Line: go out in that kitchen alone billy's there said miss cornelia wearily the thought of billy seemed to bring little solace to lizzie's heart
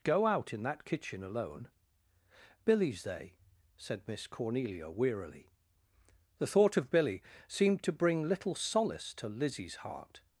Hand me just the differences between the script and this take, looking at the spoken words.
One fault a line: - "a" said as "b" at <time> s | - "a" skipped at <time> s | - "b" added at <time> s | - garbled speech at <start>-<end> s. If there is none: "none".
- "there" said as "they" at 3.0 s